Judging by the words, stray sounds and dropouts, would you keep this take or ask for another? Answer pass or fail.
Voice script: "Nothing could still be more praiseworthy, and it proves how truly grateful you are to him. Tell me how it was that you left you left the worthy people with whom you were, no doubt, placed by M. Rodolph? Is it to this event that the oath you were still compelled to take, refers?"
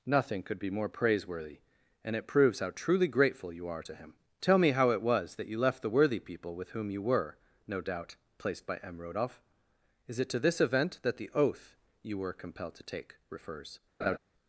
fail